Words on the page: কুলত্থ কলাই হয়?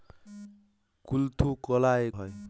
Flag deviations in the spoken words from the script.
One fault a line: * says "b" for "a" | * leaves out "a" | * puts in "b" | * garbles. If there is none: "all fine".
all fine